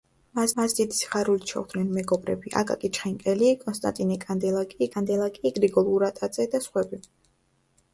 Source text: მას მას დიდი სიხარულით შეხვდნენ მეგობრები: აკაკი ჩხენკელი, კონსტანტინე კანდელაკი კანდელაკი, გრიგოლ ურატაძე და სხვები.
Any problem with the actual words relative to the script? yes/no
no